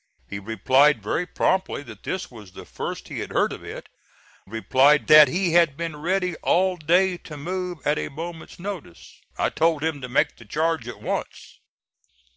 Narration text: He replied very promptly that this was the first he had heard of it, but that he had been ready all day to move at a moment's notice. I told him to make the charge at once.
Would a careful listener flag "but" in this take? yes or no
yes